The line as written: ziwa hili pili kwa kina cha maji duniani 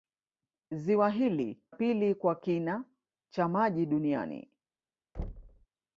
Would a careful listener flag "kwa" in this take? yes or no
no